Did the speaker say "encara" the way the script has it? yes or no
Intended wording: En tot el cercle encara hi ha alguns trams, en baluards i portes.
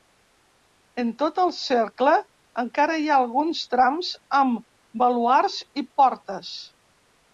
yes